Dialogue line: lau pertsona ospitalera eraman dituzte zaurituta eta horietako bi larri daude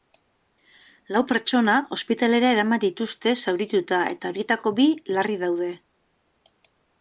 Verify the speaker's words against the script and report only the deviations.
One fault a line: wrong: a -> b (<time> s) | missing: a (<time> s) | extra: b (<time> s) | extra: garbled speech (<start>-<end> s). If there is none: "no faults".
no faults